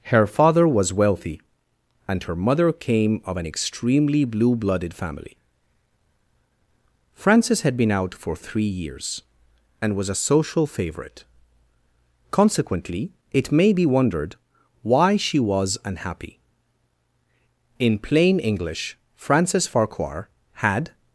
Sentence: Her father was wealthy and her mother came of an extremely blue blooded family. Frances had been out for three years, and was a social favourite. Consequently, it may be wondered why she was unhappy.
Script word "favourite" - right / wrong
right